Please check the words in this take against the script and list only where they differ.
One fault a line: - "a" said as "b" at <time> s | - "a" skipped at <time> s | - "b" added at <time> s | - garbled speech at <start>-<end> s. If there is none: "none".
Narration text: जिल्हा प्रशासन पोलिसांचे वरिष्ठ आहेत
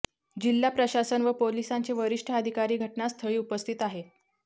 - "व" added at 1.2 s
- "अधिकारी घटनास्थळी उपस्थित" added at 2.3 s